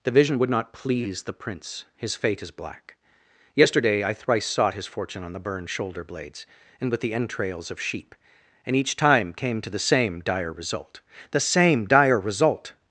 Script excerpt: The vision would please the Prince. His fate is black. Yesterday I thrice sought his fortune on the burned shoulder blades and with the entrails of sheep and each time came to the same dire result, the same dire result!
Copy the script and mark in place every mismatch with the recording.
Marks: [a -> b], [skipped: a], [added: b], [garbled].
The vision would [added: not] please the Prince. His fate is black. Yesterday I thrice sought his fortune on the burned shoulder blades and with the entrails of sheep and each time came to the same dire result, the same dire result!